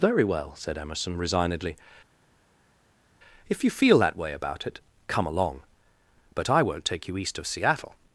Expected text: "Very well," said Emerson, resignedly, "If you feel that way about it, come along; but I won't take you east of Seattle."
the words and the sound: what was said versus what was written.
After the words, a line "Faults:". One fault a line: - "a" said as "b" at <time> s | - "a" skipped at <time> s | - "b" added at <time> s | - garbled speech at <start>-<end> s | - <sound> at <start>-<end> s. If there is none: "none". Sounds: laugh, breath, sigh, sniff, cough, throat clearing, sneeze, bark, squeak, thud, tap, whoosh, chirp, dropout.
"Very well," said Emerson, resignedly, "If you feel that way about it, come along; but I won't take you east of Seattle."
Faults:
none